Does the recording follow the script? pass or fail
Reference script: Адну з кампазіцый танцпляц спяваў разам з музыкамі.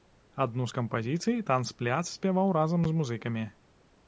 pass